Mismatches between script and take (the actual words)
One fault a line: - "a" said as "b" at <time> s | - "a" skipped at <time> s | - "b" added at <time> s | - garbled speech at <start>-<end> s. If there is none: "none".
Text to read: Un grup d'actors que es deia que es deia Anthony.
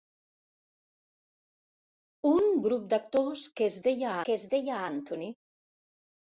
none